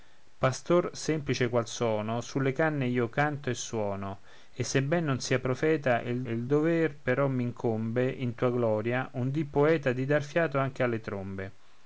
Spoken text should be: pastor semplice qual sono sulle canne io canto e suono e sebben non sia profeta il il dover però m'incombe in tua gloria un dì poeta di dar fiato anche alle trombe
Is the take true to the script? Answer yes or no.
yes